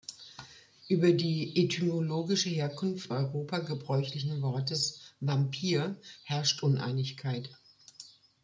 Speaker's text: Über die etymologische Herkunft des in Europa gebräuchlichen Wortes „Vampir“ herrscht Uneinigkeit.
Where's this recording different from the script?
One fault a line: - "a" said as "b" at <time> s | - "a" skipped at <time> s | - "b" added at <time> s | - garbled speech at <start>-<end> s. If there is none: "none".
- "des in" skipped at 3.1 s